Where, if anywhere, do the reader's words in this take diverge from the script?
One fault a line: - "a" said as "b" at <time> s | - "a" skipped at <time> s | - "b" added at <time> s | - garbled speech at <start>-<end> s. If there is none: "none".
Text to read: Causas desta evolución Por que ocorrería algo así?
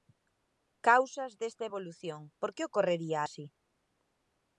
- "algo" skipped at 3.2 s